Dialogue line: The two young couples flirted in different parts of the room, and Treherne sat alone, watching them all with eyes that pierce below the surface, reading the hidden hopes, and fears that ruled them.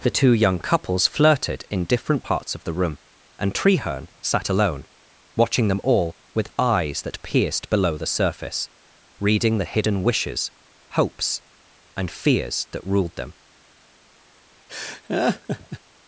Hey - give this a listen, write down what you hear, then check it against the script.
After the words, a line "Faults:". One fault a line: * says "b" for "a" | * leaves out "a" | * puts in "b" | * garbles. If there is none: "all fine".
The two young couples flirted in different parts of the room, and Treherne sat alone, watching them all with eyes that pierced below the surface, reading the hidden wishes, hopes, and fears that ruled them.
Faults:
* says "pierced" for "pierce"
* puts in "wishes"